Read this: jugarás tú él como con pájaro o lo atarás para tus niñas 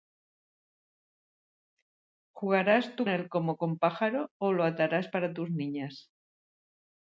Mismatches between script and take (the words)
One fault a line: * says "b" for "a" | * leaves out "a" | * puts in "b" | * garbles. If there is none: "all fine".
all fine